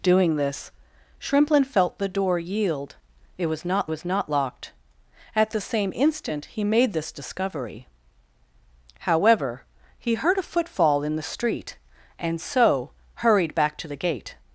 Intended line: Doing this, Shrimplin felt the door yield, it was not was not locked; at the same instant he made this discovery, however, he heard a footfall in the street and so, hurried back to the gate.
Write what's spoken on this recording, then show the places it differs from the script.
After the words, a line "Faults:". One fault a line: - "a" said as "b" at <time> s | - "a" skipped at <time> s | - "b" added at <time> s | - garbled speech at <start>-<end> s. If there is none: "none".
Doing this, Shrimplin felt the door yield, it was not was not locked; at the same instant he made this discovery, however, he heard a footfall in the street and so, hurried back to the gate.
Faults:
none